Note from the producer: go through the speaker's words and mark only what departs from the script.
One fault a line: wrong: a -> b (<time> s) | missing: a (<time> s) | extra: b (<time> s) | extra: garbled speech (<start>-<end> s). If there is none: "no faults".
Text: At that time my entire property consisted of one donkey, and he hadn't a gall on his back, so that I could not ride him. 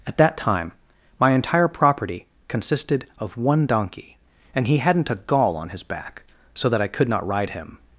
no faults